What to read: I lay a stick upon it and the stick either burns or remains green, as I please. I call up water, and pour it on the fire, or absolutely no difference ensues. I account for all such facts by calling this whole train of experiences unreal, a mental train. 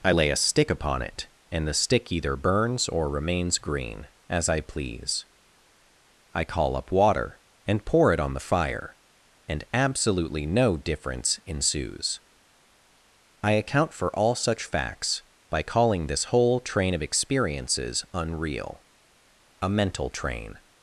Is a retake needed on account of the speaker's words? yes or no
yes